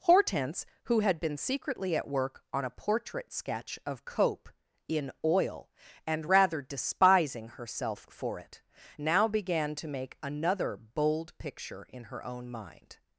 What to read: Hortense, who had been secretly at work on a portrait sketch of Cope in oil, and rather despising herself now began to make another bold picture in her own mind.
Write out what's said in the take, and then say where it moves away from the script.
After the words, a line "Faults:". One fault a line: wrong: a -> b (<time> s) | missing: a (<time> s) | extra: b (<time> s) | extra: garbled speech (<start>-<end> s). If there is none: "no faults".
Hortense, who had been secretly at work on a portrait sketch of Cope in oil, and rather despising herself for it, now began to make another bold picture in her own mind.
Faults:
extra: for it (8.1 s)